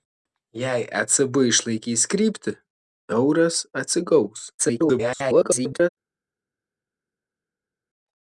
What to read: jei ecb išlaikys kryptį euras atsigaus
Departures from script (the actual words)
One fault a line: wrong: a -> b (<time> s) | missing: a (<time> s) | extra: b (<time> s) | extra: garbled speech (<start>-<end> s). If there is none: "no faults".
extra: garbled speech (4.6-5.9 s)